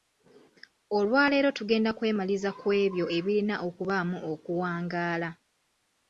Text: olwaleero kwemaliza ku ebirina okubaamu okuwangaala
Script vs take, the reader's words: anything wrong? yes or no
yes